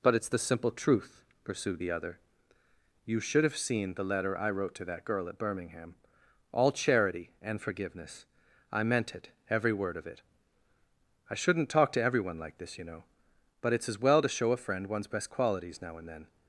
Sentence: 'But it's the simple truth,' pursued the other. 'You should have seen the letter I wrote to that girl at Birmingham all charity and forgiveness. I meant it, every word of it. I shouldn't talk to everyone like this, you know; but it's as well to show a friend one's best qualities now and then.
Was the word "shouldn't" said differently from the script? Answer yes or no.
no